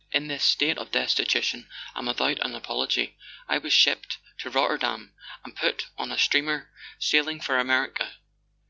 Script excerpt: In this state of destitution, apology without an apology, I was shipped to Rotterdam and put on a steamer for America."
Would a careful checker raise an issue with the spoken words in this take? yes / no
yes